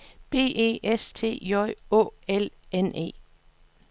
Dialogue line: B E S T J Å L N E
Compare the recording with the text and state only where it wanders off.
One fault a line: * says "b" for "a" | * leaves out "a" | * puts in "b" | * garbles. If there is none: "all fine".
all fine